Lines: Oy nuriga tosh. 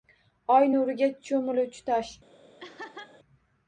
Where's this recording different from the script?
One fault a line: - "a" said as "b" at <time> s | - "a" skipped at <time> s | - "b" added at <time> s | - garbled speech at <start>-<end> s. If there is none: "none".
- "cho'miluvchi" added at 1.3 s